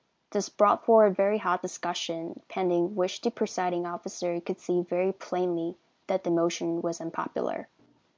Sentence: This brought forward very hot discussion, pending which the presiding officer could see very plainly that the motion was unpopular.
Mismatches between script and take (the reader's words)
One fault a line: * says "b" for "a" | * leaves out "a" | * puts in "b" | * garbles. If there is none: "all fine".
all fine